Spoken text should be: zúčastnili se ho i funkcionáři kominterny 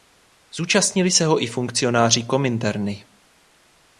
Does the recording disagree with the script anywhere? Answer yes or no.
no